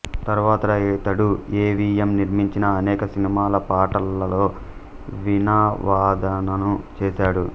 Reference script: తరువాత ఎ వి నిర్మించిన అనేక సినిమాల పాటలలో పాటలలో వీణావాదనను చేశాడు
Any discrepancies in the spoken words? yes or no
yes